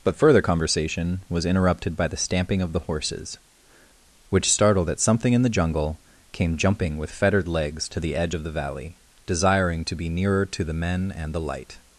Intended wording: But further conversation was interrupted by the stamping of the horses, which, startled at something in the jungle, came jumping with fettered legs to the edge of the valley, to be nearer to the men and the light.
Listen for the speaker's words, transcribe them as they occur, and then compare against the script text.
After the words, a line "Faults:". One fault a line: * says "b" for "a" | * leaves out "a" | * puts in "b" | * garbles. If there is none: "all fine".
But further conversation was interrupted by the stamping of the horses, which, startled at something in the jungle, came jumping with fettered legs to the edge of the valley, desiring to be nearer to the men and the light.
Faults:
* puts in "desiring"